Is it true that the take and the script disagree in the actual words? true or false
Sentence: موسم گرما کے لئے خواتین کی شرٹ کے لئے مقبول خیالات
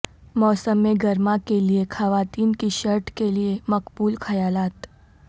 false